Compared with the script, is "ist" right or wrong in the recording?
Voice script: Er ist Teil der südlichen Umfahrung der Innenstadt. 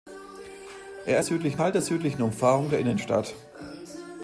wrong